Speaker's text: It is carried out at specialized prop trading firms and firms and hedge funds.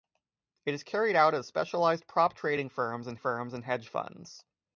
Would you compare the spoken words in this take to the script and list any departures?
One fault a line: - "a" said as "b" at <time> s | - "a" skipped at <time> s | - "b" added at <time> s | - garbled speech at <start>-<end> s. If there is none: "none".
none